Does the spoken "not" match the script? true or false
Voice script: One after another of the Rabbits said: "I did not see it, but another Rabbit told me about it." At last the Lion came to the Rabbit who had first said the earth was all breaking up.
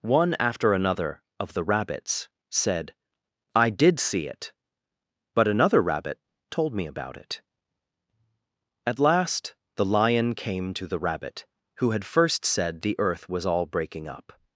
false